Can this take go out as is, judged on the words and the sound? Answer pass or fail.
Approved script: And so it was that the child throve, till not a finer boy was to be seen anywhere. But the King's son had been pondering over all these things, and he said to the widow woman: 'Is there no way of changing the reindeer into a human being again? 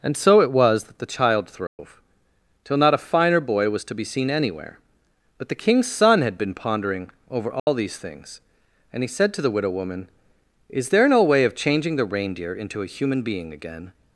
fail